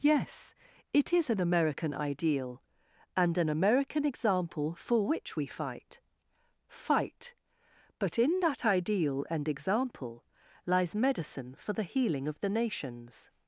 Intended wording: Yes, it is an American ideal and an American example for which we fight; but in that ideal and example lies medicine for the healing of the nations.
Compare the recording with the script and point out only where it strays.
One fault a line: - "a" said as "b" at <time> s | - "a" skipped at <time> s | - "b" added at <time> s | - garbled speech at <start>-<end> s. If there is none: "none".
- "fight" added at 6.7 s